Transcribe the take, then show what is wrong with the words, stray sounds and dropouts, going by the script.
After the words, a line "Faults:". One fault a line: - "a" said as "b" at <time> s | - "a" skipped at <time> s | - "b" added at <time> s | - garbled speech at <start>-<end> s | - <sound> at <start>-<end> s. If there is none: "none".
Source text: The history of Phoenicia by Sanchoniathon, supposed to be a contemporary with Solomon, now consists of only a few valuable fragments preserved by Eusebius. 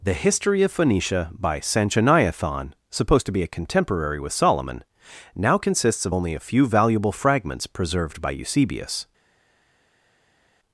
The history of Phoenicia by Sanchoniathon, supposed to be a contemporary with Solomon, now consists of only a few valuable fragments preserved by Eusebius.
Faults:
none